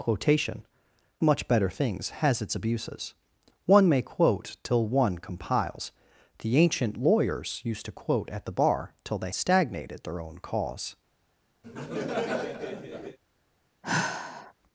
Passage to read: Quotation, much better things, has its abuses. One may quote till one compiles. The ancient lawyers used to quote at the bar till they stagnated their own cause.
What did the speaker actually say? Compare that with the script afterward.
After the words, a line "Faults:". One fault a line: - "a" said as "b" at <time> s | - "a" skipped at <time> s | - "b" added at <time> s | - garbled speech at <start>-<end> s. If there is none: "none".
Quotation, much better things, has its abuses. One may quote till one compiles. The ancient lawyers used to quote at the bar till they stagnated their own cause.
Faults:
none